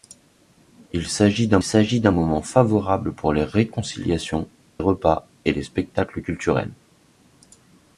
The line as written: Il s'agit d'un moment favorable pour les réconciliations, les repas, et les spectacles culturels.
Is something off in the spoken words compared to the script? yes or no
yes